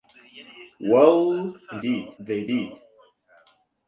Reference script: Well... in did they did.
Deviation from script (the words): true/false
false